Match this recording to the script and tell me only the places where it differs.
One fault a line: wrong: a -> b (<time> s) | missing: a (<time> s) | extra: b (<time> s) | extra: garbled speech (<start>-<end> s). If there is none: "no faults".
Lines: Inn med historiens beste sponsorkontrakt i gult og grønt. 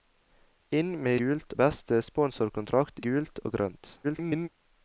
wrong: historiens -> gult (1.2 s)
missing: i (3.0 s)
extra: garbled speech (4.0-4.5 s)